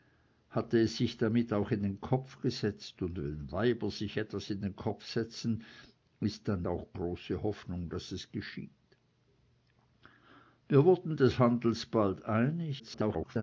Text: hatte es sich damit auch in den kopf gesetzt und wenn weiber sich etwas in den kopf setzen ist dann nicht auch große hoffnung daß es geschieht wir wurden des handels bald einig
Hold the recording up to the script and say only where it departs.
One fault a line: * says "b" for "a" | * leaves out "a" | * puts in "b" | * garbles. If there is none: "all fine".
* leaves out "nicht"
* garbles